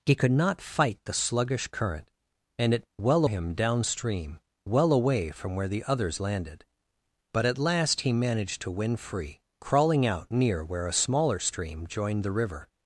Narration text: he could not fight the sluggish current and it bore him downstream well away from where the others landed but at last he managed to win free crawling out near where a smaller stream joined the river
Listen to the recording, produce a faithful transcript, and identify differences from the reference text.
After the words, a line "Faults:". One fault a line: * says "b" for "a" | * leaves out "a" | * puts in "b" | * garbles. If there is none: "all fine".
he could not fight the sluggish current and it well him downstream well away from where the others landed but at last he managed to win free crawling out near where a smaller stream joined the river
Faults:
* says "well" for "bore"